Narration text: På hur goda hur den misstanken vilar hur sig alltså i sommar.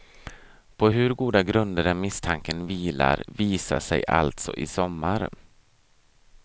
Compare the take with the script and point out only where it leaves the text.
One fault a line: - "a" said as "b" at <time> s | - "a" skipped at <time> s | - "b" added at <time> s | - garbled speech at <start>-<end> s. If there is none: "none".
- "hur" said as "grunder" at 1.4 s
- "hur" said as "visar" at 3.3 s